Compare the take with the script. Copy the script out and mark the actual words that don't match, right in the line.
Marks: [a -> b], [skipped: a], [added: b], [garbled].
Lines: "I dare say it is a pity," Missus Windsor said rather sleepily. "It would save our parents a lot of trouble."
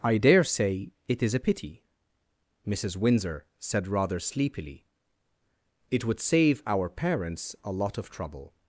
"I dare say it is a pity," Missus Windsor said rather sleepily. "It would save our parents a lot of trouble."